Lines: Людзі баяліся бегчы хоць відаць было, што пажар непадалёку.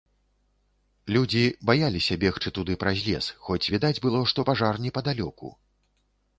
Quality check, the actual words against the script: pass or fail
fail